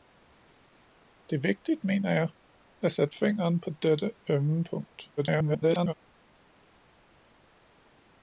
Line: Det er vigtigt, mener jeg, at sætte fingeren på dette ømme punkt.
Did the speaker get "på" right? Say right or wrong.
right